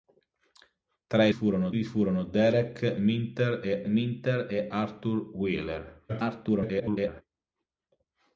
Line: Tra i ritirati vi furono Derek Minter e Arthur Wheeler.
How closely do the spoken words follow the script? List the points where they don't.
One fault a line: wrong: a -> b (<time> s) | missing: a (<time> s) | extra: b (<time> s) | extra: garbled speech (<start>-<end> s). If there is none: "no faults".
wrong: ritirati -> furono (1.3 s)
extra: Minter e (3.9 s)
extra: garbled speech (6.1-7.2 s)